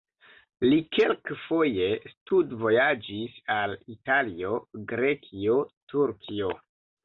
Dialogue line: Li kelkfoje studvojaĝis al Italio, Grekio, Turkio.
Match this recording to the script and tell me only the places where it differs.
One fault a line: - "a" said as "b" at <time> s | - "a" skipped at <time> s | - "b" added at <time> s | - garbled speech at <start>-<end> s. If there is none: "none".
none